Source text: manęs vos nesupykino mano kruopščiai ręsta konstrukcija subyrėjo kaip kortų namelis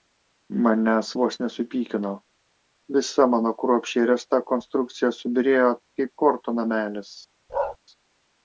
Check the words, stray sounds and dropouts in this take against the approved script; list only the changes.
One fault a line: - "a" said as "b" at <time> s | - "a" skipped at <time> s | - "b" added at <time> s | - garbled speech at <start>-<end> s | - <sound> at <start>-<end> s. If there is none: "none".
- "visa" added at 3.0 s
- bark at 7.5-7.8 s